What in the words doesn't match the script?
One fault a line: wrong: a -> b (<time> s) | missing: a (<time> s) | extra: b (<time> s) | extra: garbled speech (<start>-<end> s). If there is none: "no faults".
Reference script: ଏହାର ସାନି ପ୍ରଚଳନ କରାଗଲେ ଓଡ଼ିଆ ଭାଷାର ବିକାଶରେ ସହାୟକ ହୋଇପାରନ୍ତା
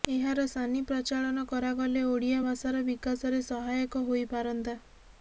no faults